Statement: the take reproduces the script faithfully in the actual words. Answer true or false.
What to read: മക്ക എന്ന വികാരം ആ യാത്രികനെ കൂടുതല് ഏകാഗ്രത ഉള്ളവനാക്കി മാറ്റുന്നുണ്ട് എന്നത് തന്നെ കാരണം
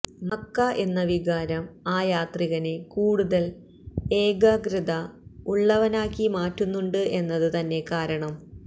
true